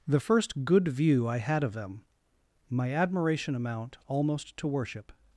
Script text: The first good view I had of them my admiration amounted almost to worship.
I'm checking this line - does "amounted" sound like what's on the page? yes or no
no